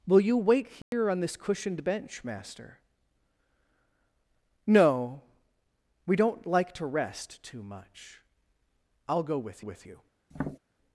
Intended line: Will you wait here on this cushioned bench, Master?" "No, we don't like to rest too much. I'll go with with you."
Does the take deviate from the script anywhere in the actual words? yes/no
no